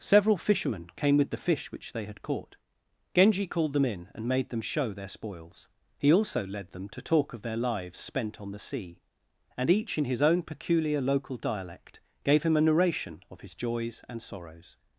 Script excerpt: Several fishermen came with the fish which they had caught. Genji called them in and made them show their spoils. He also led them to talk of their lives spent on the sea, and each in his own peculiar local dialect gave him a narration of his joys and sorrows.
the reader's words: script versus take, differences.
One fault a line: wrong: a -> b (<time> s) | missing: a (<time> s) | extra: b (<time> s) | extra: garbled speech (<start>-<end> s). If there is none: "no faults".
no faults